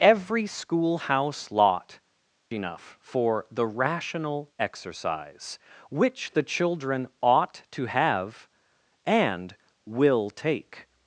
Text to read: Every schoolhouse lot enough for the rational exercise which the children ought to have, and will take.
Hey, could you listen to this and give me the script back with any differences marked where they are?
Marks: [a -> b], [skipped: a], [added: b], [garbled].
Every schoolhouse lot enough for the rational exercise which the children ought to have, and will take.